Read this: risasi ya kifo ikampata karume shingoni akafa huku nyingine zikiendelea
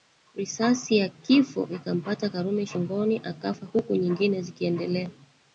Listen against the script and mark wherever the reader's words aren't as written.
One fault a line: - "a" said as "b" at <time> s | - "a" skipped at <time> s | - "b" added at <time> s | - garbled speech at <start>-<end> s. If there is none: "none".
none